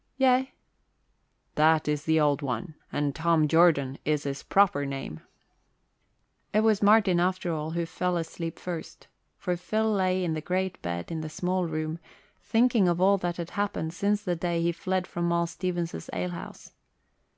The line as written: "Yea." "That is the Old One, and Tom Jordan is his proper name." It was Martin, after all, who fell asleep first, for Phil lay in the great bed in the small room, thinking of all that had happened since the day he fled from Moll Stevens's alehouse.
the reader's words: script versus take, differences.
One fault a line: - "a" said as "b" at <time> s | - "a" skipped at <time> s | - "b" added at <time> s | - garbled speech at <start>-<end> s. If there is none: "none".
none